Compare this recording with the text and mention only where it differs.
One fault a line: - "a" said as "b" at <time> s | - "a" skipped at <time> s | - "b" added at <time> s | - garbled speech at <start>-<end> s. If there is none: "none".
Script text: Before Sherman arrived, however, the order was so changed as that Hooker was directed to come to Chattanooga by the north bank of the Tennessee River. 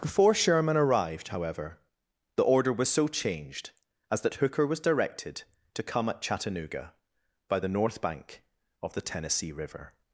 - "to" said as "at" at 6.1 s